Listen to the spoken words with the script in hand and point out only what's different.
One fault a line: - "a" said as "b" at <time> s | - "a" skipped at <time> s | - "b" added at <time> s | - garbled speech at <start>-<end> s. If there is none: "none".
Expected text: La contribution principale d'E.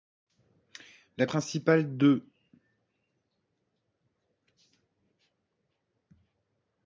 - "contribution" skipped at 1.3 s